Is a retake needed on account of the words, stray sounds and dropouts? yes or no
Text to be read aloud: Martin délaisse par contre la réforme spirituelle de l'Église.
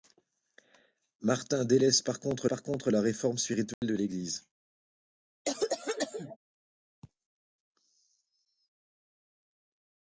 yes